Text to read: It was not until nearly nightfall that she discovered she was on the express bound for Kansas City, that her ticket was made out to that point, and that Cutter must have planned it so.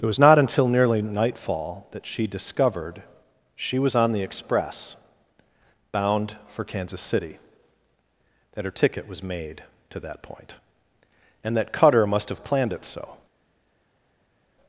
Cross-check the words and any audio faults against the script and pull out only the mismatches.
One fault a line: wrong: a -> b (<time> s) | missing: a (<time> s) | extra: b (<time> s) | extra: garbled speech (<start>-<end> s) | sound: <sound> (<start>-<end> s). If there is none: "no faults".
missing: out (9.6 s)